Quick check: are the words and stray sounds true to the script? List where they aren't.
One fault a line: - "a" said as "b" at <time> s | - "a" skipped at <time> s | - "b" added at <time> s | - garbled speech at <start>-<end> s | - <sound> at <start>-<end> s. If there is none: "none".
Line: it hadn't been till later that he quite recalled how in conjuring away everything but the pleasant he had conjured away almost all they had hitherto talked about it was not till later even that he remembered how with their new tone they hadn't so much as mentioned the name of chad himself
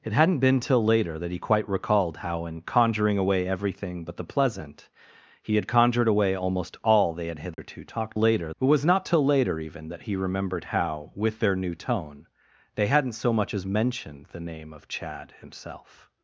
- dropout at 7.5-7.6 s
- "about" said as "later" at 8.2 s